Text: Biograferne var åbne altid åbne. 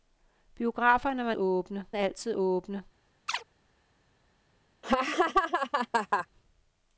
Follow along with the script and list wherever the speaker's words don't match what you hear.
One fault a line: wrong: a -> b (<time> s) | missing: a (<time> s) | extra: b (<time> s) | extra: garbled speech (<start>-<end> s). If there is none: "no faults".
no faults